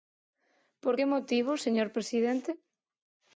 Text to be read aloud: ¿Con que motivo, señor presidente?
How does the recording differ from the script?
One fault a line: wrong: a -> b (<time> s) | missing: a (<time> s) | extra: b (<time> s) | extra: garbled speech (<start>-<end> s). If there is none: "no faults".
wrong: Con -> Por (0.8 s)